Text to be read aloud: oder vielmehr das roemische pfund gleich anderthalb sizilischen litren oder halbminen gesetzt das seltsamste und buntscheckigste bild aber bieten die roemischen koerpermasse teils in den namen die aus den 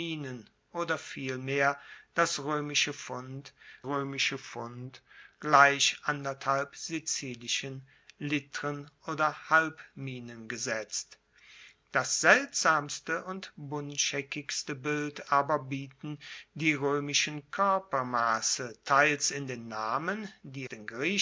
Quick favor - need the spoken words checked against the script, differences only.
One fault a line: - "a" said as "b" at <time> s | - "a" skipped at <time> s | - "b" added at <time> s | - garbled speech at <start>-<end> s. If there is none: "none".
- "roemische pfund" added at 3.8 s
- "aus" skipped at 20.7 s